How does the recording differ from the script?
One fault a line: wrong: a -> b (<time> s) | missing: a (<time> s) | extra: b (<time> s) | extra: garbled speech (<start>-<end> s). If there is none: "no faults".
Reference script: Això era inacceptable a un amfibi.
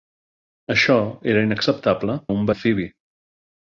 no faults